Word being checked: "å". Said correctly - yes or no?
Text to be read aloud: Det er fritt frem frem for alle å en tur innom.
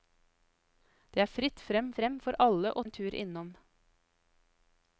yes